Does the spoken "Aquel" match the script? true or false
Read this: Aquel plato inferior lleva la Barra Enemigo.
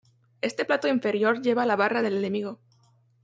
false